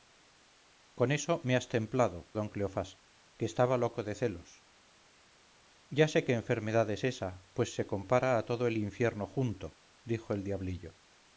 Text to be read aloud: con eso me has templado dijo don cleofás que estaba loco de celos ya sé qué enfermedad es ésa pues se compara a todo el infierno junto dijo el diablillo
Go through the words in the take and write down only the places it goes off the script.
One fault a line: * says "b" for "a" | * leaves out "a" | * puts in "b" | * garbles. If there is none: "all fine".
* leaves out "dijo"